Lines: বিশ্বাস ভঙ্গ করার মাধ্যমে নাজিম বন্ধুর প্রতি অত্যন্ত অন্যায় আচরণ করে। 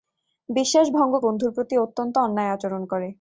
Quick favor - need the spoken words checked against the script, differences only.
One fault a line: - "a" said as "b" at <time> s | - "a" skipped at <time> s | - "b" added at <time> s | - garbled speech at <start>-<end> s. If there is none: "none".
- "করার মাধ্যমে নাজিম" skipped at 1.1 s